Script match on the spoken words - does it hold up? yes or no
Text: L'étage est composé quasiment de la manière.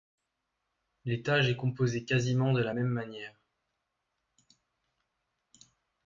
no